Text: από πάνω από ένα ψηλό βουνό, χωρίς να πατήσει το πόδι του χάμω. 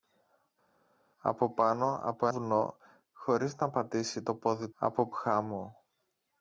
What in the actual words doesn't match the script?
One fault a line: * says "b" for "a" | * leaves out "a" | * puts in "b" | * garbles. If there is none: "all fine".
* leaves out "ένα ψηλό"
* says "από" for "του"